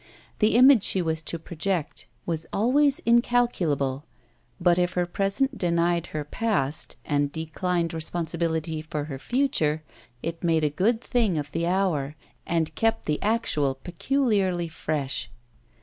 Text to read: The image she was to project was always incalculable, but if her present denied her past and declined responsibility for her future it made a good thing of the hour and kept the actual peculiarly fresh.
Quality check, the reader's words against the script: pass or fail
pass